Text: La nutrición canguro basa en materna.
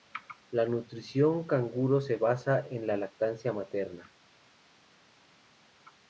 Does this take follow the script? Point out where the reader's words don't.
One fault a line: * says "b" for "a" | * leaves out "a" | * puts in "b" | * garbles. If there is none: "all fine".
* puts in "se"
* puts in "la lactancia"